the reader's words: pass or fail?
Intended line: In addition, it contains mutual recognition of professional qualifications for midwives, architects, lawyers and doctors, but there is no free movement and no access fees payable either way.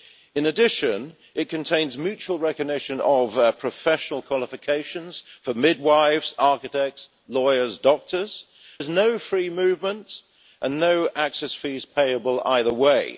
fail